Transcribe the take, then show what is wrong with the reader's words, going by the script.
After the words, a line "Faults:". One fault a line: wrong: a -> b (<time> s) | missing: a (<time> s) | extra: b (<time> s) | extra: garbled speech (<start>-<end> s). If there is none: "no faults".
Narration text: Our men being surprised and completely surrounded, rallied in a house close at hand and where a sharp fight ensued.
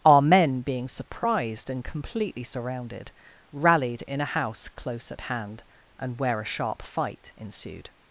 Our men being surprised and completely surrounded, rallied in a house close at hand and where a sharp fight ensued.
Faults:
no faults